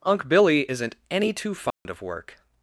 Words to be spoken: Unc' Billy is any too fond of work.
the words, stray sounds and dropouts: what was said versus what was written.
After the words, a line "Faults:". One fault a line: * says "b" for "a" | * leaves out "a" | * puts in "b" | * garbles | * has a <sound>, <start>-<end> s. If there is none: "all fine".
Unc' Billy isn't any too fond of work.
Faults:
* says "isn't" for "is"
* has a dropout, 1.7-1.9 s